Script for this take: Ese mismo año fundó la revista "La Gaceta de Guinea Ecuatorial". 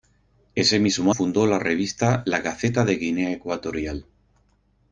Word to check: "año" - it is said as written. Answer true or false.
false